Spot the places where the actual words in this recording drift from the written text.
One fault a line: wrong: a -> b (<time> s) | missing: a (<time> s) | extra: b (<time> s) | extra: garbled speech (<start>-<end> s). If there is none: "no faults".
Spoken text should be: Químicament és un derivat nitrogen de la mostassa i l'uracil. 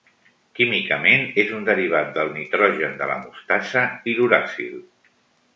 extra: del (2.2 s)